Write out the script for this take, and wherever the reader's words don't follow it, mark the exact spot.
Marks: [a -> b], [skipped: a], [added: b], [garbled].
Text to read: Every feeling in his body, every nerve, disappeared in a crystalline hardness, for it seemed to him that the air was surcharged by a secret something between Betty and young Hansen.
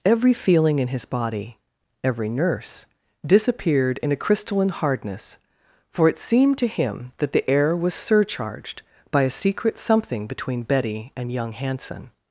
Every feeling in his body, every [nerve, -> nurse] disappeared in a crystalline hardness, for it seemed to him that the air was surcharged by a secret something between Betty and young Hansen.